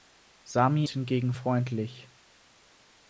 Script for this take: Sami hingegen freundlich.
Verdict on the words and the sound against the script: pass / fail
pass